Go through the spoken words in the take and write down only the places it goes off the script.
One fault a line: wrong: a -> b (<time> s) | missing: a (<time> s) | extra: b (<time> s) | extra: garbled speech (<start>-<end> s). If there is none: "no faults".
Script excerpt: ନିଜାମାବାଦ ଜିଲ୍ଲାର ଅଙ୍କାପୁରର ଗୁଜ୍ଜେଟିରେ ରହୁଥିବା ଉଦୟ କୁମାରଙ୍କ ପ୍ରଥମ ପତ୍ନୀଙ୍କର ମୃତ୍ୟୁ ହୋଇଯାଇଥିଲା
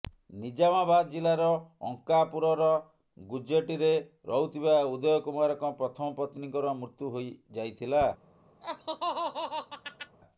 no faults